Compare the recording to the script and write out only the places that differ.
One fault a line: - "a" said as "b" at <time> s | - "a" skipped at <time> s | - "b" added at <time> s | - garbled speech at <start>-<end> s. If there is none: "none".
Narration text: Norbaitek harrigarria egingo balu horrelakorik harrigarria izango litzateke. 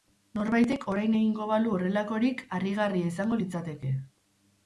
- "harrigarria" said as "orain" at 0.9 s